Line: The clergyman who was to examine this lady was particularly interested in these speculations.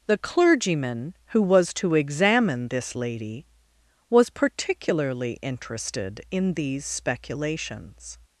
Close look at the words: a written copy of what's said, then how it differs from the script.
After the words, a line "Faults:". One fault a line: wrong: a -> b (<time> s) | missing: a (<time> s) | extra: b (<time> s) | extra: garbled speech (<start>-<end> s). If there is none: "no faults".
The clergyman who was to examine this lady was particularly interested in these speculations.
Faults:
no faults